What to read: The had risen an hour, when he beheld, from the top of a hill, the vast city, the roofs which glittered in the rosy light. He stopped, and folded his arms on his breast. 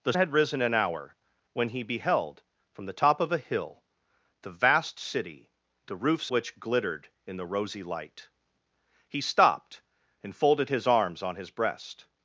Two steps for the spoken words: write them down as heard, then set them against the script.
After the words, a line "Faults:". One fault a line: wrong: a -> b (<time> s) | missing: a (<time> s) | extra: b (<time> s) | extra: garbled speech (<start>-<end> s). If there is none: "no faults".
The had risen an hour, when he beheld, from the top of a hill, the vast city, the roofs which glittered in the rosy light. He stopped, and folded his arms on his breast.
Faults:
no faults